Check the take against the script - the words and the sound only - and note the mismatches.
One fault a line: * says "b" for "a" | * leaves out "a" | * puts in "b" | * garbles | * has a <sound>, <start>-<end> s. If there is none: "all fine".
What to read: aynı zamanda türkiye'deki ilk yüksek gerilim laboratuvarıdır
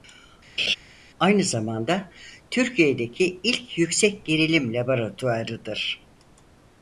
* has a laugh, 0.6-0.8 s